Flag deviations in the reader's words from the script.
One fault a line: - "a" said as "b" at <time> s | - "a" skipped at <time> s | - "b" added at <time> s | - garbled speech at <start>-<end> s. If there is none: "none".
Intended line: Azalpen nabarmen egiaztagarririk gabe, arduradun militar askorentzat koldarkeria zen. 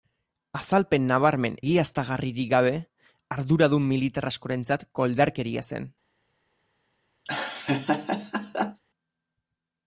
none